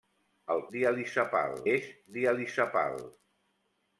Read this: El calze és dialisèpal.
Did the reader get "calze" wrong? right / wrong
wrong